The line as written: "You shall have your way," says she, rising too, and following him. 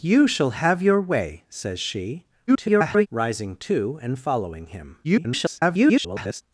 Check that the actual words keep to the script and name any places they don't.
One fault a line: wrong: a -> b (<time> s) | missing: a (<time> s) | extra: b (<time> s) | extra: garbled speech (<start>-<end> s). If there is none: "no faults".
extra: garbled speech (2.5-3.1 s)
extra: garbled speech (5.0-6.4 s)